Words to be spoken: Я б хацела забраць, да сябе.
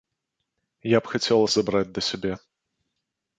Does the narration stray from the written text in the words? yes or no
no